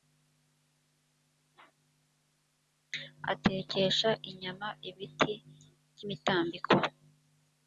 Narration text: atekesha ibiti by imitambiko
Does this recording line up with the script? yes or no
no